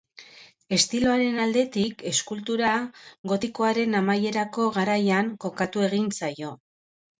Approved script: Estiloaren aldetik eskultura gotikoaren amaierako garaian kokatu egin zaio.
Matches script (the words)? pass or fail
pass